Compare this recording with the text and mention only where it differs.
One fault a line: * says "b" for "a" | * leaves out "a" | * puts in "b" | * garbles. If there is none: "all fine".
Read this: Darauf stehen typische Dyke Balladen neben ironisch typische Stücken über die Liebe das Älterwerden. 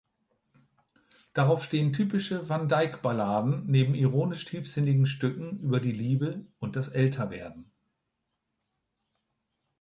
* puts in "van"
* says "tiefsinnigen" for "typische"
* puts in "und"